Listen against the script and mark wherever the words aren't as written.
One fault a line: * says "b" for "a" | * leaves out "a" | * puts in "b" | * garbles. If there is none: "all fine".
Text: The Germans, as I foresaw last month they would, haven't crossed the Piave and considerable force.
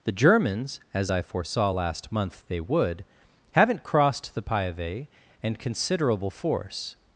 all fine